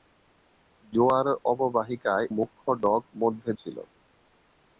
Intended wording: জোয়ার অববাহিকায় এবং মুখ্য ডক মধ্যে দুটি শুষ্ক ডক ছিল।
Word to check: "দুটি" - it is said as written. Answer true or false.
false